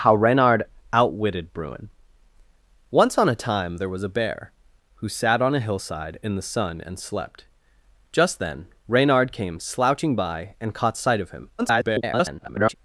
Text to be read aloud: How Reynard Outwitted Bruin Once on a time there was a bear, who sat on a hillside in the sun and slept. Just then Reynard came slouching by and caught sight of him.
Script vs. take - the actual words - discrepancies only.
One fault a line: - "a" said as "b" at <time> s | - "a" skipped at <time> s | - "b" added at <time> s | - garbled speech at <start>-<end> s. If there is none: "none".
- garbled speech at 11.6-12.7 s